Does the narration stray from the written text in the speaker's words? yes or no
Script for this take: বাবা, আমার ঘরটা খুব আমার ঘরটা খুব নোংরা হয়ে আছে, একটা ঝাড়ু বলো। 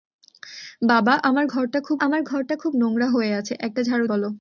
no